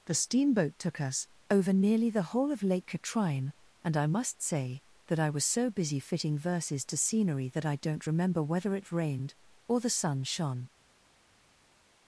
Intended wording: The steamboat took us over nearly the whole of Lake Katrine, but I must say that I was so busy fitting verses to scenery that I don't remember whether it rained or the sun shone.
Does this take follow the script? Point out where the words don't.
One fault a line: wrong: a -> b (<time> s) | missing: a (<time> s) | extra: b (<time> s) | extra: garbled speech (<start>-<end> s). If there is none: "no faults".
wrong: but -> and (3.8 s)